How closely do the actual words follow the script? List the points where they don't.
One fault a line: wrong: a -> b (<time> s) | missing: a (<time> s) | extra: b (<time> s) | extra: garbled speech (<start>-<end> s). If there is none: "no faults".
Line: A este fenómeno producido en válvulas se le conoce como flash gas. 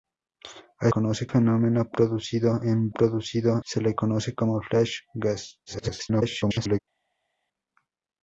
wrong: este -> conoce (0.9 s)
wrong: válvulas -> producido (2.9 s)
extra: garbled speech (5.7-6.8 s)